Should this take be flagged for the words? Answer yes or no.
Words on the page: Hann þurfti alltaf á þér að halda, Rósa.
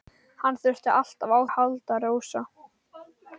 yes